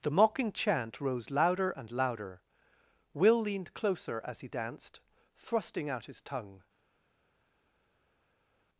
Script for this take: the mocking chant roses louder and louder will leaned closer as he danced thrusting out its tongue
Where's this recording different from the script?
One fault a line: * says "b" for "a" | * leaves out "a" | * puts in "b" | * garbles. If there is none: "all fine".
* says "rose" for "roses"
* says "his" for "its"